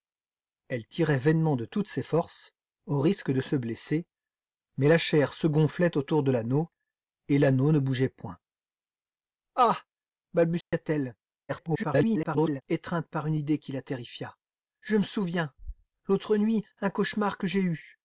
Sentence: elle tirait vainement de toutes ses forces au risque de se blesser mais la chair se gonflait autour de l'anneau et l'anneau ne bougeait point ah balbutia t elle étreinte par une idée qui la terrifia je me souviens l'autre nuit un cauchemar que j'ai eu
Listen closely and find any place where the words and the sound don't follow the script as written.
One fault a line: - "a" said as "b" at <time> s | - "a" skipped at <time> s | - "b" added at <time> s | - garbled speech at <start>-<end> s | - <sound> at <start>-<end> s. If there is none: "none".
- dropout at 10.6-10.7 s
- garbled speech at 11.5-12.6 s